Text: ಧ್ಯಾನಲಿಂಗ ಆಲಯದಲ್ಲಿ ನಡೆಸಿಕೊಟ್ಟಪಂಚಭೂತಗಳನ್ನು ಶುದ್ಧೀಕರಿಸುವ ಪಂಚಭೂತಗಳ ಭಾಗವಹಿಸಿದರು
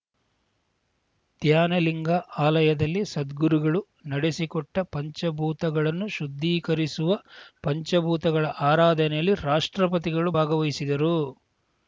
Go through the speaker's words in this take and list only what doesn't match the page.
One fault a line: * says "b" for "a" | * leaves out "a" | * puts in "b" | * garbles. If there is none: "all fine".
* puts in "ಸದ್ಗುರುಗಳು"
* puts in "ಆರಾಧನೆಯಲ್ಲಿ ರಾಷ್ಟ್ರಪತಿಗಳು"